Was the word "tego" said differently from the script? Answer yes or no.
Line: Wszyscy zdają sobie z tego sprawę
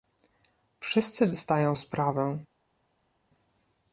yes